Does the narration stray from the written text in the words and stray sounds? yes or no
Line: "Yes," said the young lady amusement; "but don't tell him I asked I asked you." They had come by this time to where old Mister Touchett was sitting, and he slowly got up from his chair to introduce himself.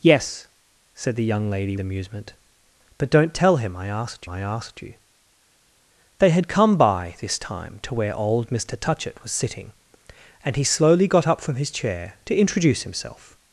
no